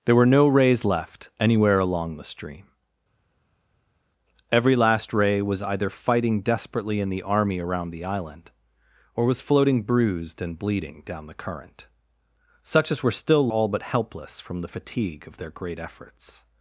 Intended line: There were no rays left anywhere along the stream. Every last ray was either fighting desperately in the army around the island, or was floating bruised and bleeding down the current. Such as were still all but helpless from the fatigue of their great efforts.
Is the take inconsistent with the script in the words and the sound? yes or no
no